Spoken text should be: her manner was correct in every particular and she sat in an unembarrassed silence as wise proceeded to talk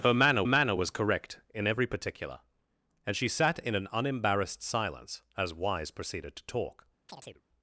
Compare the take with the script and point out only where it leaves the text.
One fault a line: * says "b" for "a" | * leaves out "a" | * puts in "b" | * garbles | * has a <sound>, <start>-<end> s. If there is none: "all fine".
* puts in "manner"
* has a chirp, 7.1-7.4 s